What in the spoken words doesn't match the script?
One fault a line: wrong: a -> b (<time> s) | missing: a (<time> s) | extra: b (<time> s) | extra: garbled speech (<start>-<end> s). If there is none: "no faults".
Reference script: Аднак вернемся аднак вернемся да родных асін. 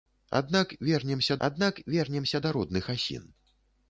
no faults